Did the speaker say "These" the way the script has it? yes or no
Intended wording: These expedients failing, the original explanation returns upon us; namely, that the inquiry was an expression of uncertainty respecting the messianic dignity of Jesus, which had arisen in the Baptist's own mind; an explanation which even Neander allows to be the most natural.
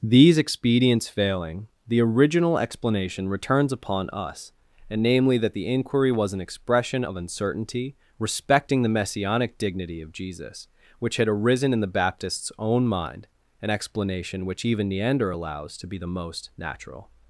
yes